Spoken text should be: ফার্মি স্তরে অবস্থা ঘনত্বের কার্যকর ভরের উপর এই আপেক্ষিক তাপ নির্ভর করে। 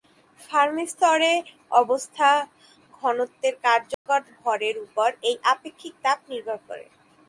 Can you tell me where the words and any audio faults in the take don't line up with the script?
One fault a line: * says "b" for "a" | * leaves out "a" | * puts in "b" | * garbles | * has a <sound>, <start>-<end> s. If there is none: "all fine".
* has a dropout, 3.9-4.1 s